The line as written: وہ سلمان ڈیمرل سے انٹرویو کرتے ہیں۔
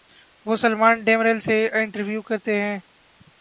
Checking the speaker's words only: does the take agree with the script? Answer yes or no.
yes